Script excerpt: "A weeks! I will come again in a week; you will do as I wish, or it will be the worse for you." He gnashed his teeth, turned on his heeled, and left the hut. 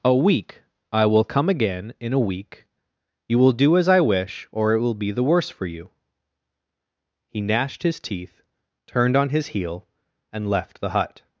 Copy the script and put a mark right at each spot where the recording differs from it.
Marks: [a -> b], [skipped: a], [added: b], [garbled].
"A [weeks! -> week] I will come again in a week; you will do as I wish, or it will be the worse for you." He gnashed his teeth, turned on his [heeled, -> heel] and left the hut.